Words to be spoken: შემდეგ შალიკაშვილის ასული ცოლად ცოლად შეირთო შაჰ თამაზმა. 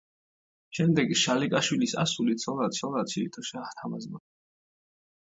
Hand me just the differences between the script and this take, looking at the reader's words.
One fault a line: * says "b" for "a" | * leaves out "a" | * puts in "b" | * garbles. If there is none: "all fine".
all fine